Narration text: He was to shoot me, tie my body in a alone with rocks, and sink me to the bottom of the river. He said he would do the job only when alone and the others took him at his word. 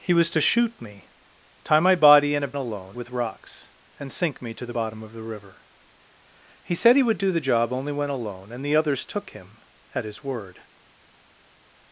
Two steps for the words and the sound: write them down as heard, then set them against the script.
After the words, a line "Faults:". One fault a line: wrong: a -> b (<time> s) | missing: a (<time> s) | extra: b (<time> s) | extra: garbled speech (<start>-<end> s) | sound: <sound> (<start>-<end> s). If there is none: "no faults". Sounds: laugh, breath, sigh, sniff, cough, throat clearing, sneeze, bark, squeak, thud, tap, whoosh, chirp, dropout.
He was to shoot me, tie my body in a alone with rocks, and sink me to the bottom of the river. He said he would do the job only when alone and the others took him at his word.
Faults:
no faults